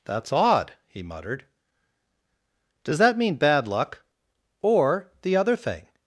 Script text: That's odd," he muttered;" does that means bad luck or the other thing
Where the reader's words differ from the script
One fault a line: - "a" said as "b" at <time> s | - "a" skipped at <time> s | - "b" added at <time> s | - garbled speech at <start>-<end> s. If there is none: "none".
- "means" said as "mean" at 3.2 s